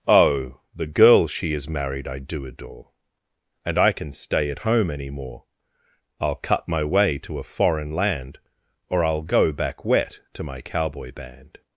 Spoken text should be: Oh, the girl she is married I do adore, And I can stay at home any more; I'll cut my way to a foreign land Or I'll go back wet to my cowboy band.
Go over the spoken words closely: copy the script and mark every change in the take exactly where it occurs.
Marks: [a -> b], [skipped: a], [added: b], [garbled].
Oh, the girl she is married I do adore, And I can stay at home any more; I'll cut my way to a foreign land Or I'll go back wet to my cowboy band.